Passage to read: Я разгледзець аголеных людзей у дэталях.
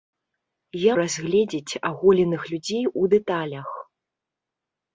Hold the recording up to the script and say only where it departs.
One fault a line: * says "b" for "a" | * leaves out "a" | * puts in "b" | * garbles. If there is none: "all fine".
all fine